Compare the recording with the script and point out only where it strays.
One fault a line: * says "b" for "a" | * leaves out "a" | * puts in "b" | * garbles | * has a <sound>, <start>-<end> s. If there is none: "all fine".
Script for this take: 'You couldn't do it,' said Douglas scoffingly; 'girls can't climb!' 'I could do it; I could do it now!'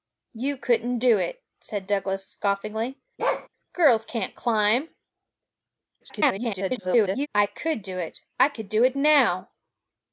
* has a bark, 3.2-3.5 s
* garbles